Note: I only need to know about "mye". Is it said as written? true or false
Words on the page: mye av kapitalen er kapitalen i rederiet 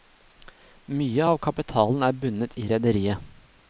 true